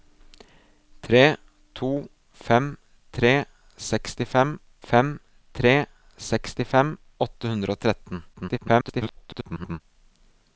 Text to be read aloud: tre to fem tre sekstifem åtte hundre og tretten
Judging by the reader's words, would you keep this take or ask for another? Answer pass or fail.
fail